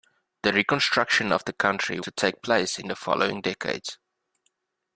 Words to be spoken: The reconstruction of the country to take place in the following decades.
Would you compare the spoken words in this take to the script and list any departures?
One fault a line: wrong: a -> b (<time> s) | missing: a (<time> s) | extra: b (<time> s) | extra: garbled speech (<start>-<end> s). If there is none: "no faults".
no faults